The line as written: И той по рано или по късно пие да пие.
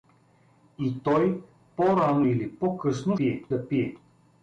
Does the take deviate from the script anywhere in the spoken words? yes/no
no